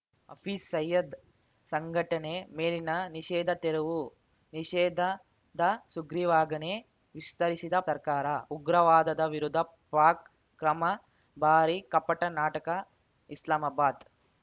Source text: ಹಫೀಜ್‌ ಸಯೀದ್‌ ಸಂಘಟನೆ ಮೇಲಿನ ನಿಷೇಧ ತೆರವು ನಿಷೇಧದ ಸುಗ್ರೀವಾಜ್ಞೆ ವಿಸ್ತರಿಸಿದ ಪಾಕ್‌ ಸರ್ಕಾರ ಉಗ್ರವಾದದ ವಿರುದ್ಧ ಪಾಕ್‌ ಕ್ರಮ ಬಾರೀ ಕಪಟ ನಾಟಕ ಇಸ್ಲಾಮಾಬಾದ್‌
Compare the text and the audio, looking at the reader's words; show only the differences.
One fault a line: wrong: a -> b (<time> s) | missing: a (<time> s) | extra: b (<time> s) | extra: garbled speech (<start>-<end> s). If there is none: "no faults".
missing: ಪಾಕ್ (7.8 s)